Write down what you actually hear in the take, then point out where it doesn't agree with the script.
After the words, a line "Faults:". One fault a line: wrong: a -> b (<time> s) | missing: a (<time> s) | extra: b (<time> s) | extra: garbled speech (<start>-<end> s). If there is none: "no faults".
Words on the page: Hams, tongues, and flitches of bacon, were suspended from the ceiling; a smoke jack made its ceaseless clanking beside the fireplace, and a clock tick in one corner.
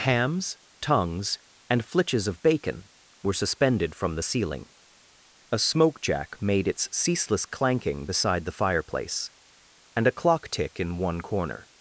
Hams, tongues, and flitches of bacon, were suspended from the ceiling; a smoke jack made its ceaseless clanking beside the fireplace, and a clock tick in one corner.
Faults:
no faults